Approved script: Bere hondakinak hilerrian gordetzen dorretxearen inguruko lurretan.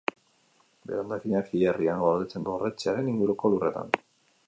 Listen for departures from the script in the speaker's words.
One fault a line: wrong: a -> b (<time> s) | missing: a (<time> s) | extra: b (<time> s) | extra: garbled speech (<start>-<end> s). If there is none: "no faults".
no faults